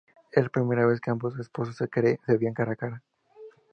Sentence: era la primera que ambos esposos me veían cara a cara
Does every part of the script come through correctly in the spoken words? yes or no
no